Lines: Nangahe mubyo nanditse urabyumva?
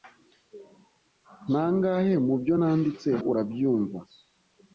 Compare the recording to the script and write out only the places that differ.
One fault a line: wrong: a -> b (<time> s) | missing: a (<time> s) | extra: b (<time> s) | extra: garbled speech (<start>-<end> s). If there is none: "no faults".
no faults